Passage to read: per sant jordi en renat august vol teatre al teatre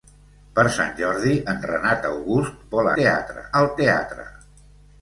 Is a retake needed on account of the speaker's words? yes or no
no